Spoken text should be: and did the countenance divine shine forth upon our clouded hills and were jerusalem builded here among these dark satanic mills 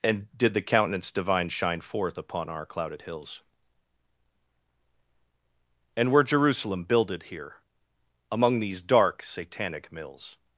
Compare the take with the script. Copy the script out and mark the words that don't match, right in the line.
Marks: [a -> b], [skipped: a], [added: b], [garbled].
and did the countenance divine shine forth upon our clouded hills and were jerusalem builded here among these dark satanic mills